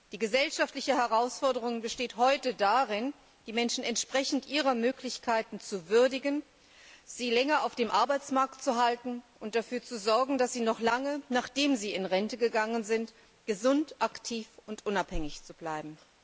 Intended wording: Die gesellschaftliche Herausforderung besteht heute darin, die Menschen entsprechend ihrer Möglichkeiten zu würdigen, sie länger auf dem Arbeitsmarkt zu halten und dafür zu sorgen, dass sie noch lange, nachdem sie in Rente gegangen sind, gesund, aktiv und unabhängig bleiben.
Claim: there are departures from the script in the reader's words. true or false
false